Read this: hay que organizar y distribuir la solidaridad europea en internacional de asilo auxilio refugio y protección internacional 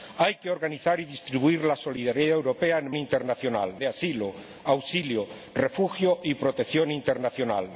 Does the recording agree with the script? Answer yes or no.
yes